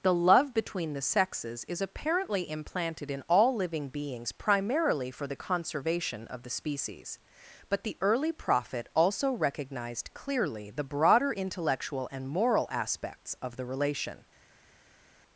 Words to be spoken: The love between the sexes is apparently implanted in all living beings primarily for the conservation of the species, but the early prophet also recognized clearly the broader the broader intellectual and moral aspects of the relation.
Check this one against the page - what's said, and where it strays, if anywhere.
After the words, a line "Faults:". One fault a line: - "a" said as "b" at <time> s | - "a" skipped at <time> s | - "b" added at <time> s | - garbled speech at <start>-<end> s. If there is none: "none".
The love between the sexes is apparently implanted in all living beings primarily for the conservation of the species, but the early prophet also recognized clearly the broader intellectual and moral aspects of the relation.
Faults:
- "the broader" skipped at 11.3 s